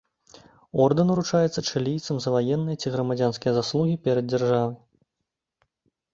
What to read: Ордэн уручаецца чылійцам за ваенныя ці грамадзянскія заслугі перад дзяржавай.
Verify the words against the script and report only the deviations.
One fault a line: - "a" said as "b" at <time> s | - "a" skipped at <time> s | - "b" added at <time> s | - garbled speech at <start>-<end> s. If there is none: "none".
none